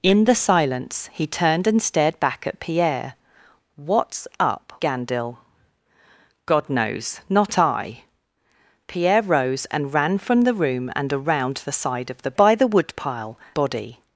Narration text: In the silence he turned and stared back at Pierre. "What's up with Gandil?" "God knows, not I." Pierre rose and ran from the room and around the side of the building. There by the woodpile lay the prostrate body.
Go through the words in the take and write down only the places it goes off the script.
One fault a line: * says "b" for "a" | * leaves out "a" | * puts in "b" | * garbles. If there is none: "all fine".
* leaves out "with"
* leaves out "building There"
* leaves out "lay the prostrate"